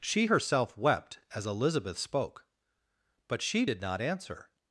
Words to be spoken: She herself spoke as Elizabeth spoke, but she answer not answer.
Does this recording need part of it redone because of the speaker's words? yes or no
yes